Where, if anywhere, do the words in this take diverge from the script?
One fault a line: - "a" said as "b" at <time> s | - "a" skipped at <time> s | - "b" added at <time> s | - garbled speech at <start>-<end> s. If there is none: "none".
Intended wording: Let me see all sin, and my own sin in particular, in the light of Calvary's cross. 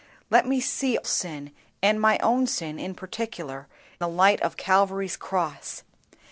- "all" skipped at 1.0 s
- "in" skipped at 3.7 s